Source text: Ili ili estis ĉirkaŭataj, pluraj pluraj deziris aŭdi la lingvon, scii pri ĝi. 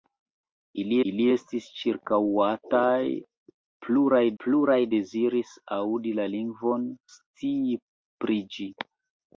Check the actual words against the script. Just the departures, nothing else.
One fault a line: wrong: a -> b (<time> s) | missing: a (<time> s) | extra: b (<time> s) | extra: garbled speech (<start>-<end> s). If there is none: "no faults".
no faults